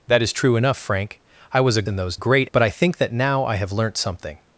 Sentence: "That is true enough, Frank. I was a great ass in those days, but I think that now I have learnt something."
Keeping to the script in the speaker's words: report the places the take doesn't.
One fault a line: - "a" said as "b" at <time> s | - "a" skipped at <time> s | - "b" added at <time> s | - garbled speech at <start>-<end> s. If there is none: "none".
- "great ass" skipped at 1.8 s
- "days" said as "great" at 2.1 s